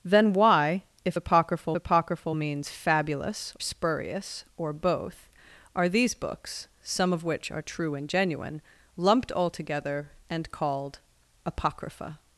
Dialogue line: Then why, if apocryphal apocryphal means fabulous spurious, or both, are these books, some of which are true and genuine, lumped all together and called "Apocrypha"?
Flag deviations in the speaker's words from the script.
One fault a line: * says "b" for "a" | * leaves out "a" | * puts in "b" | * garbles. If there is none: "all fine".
all fine